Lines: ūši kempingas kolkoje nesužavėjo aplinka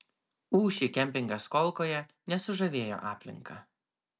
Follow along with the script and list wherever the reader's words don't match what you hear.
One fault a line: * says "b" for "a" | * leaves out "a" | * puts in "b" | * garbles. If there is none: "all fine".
all fine